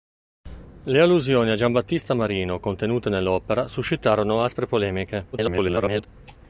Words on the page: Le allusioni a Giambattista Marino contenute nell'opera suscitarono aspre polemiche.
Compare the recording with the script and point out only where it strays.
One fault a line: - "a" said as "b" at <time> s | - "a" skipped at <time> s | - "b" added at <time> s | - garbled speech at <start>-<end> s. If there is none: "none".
- garbled speech at 5.3-6.1 s